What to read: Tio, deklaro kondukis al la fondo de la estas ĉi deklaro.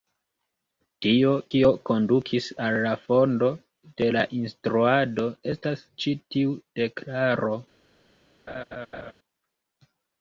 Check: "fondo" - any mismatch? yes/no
no